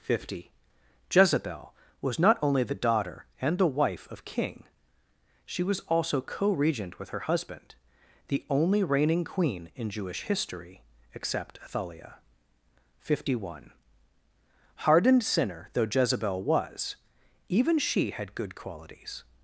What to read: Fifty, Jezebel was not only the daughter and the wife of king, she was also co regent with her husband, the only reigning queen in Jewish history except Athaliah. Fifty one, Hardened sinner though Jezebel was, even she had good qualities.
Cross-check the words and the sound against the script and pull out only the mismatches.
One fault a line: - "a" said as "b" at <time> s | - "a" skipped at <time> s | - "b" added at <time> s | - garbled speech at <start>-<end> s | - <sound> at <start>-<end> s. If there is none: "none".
none